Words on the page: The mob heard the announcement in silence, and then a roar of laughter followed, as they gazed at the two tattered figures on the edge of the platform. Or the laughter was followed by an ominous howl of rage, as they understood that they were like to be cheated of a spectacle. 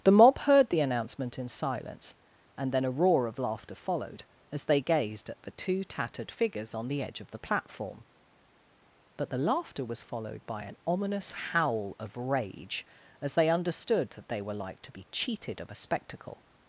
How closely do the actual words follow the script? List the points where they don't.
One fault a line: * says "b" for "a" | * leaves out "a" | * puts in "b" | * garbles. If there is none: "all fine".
* says "But" for "Or"